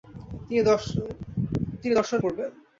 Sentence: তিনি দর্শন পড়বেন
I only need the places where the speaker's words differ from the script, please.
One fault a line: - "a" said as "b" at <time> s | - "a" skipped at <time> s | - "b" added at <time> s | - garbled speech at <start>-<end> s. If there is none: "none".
none